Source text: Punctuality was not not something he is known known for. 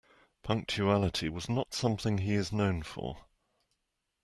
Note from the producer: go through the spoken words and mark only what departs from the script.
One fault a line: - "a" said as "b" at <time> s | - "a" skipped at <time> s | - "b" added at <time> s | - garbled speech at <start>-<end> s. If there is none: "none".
- "not" skipped at 1.8 s
- "known" skipped at 2.8 s